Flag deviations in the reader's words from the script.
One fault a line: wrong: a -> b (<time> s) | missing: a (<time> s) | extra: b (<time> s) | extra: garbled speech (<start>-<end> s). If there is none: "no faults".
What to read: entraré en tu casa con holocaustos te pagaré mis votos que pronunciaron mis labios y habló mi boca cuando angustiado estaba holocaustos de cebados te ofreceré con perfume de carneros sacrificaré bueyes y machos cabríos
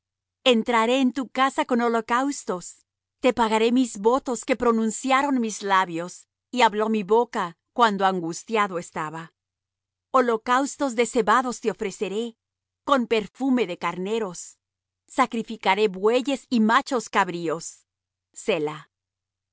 no faults